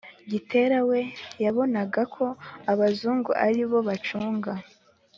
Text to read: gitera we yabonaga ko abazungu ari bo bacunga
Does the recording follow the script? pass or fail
pass